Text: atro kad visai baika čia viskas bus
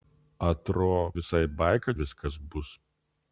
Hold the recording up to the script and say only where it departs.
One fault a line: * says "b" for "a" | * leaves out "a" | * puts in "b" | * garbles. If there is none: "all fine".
* leaves out "kad"
* leaves out "čia"